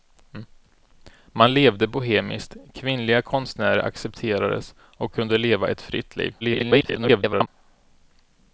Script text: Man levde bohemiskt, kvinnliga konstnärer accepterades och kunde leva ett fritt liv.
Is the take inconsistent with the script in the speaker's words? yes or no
yes